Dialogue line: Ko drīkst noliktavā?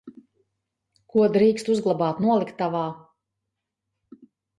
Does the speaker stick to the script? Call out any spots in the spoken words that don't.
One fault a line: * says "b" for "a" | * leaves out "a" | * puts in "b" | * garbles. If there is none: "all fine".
* puts in "uzglabāt"